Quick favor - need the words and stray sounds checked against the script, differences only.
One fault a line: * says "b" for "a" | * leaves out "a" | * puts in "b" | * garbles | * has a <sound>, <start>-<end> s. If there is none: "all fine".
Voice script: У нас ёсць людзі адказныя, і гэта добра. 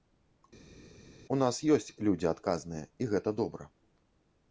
all fine